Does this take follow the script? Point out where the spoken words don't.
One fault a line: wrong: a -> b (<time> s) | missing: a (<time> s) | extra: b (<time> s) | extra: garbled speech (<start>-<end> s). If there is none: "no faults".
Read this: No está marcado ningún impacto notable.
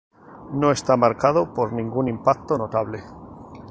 extra: por (1.4 s)